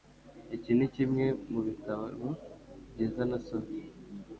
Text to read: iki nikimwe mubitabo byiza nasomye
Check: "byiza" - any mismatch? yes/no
no